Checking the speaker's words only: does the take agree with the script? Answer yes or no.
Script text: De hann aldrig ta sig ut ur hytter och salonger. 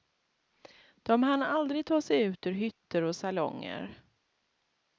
yes